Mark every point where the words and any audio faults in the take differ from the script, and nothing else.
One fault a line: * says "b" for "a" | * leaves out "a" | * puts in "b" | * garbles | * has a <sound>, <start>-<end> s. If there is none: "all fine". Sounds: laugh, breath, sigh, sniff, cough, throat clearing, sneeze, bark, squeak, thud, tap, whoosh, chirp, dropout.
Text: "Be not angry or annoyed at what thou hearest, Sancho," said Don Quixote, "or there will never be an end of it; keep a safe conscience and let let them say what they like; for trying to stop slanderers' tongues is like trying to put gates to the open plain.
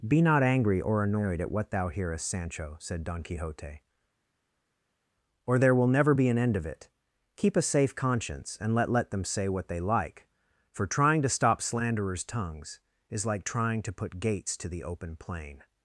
all fine